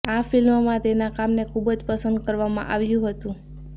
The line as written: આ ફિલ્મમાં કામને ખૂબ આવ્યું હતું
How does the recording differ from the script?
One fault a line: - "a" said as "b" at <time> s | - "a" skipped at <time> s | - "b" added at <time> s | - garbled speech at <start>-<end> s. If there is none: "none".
- "તેના" added at 0.8 s
- "જ પસંદ કરવામાં" added at 1.7 s